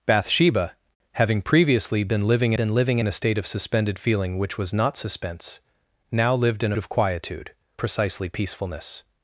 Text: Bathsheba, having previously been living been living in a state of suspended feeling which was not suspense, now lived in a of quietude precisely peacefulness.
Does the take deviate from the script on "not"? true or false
false